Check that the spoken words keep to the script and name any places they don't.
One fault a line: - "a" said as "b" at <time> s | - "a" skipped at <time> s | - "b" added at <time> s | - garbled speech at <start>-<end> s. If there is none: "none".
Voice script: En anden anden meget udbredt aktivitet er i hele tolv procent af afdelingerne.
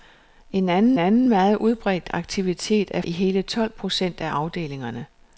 none